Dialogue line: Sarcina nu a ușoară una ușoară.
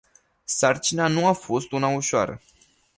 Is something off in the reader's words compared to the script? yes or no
yes